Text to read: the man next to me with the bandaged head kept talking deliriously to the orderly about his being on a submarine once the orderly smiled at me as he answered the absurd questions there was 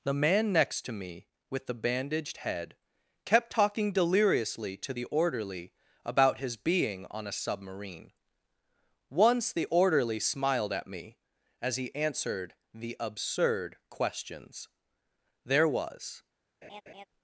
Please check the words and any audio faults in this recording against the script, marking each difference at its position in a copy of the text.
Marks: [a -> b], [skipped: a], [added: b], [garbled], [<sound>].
the man next to me with the bandaged head kept talking deliriously to the orderly about his being on a submarine once the orderly smiled at me as he answered the absurd questions there was [laugh]